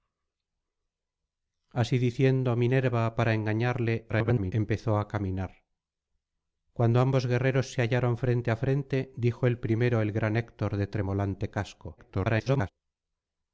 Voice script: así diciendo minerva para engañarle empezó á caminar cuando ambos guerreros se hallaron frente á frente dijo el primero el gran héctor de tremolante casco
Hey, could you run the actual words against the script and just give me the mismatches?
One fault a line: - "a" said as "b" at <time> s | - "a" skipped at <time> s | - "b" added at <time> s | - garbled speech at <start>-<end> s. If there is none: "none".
- garbled speech at 4.1-4.5 s
- garbled speech at 12.0-12.7 s